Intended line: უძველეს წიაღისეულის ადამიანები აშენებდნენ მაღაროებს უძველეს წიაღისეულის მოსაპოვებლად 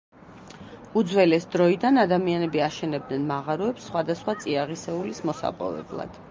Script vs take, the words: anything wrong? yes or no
yes